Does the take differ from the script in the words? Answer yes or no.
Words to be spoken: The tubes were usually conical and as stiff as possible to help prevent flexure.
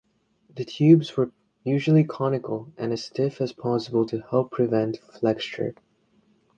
no